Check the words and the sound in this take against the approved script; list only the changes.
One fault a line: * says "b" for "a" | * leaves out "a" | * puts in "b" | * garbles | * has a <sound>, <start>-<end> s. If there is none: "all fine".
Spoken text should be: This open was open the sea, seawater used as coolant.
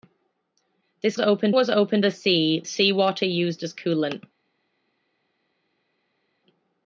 all fine